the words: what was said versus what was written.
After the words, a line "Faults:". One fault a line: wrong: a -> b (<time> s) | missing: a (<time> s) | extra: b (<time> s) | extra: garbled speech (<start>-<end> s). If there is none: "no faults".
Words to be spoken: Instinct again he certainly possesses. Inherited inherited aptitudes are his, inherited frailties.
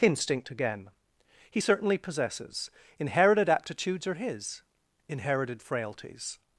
Instinct again he certainly possesses. Inherited aptitudes are his, inherited frailties.
Faults:
missing: inherited (3.5 s)